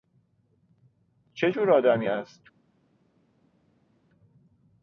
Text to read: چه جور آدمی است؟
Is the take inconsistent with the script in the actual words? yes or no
no